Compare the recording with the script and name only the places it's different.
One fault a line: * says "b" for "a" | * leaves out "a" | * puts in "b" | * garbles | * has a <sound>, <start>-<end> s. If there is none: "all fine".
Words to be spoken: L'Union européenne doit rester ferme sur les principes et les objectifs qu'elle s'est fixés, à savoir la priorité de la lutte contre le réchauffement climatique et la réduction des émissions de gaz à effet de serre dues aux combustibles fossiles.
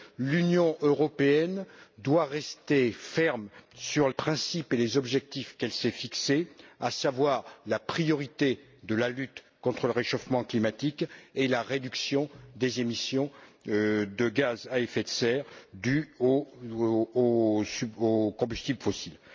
* leaves out "les"